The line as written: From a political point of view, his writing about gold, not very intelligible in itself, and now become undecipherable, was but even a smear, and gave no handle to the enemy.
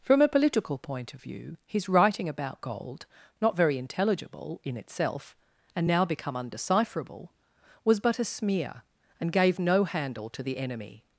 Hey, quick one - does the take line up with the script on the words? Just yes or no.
no